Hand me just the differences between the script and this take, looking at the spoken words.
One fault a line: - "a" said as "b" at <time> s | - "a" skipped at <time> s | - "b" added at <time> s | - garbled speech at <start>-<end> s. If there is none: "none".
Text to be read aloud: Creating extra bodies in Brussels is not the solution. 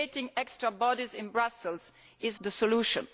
- "not" skipped at 2.4 s